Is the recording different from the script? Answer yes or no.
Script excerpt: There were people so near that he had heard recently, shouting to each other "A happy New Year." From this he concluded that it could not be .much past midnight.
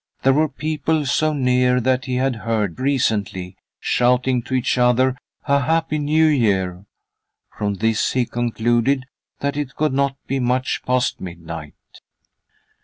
no